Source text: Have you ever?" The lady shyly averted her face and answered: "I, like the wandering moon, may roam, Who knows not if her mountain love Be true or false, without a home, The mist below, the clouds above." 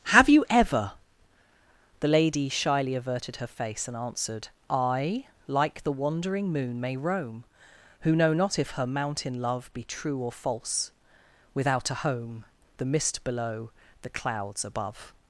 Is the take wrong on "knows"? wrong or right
wrong